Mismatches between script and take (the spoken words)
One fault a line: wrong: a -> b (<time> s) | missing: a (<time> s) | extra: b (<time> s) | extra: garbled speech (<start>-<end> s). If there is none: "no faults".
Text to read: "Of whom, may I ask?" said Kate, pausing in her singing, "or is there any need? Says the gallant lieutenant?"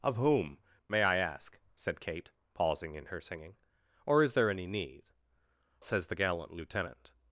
no faults